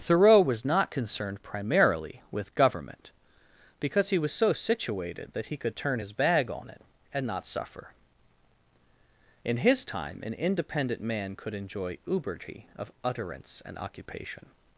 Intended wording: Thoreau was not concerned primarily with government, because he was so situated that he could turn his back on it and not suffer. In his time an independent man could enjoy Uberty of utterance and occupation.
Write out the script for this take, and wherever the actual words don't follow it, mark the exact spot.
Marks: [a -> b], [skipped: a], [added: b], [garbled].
Thoreau was not concerned primarily with government, because he was so situated that he could turn his [back -> bag] on it and not suffer. In his time an independent man could enjoy Uberty of utterance and occupation.